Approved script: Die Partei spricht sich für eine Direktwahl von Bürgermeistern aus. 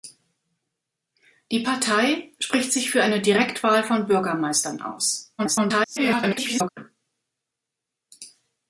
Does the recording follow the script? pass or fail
fail